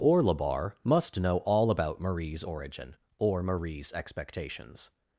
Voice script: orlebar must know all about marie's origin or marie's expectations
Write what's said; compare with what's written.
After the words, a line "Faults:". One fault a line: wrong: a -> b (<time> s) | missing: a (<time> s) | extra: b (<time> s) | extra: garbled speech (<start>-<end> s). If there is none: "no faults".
orlebar must know all about marie's origin or marie's expectations
Faults:
no faults